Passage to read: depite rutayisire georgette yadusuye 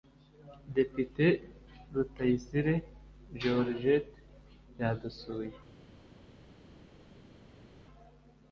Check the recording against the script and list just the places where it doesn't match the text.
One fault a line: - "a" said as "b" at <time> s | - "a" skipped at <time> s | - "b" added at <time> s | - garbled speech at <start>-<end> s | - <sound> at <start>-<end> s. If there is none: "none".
none